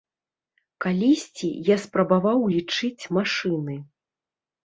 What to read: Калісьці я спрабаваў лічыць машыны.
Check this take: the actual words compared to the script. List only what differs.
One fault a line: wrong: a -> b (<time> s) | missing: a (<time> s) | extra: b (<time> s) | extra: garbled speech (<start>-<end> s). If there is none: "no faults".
no faults